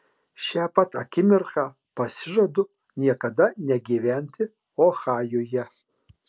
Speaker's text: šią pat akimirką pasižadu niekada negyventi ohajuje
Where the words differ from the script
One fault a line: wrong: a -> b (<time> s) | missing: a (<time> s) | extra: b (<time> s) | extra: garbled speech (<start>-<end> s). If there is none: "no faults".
no faults